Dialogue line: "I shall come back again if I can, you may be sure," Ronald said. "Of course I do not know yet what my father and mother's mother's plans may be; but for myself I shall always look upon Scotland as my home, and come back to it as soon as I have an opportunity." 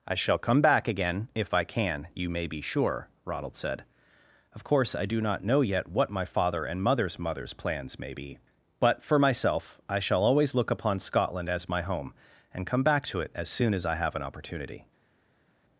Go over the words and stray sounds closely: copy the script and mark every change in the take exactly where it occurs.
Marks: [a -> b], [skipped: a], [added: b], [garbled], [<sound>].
"I shall come back again if I can, you may be sure," Ronald said. "Of course I do not know yet what my father and mother's mother's plans may be; but for myself I shall always look upon Scotland as my home, and come back to it as soon as I have an opportunity."